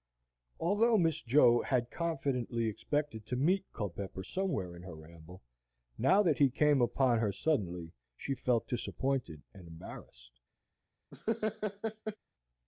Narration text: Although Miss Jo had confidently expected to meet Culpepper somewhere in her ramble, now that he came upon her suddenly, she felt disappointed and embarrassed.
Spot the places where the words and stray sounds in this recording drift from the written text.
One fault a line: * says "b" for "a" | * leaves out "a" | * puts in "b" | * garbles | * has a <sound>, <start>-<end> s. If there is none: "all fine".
* has a laugh, 11.1-12.2 s